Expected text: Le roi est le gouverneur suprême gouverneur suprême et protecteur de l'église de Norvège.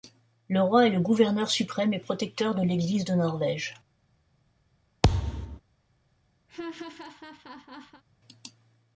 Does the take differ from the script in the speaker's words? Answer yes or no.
yes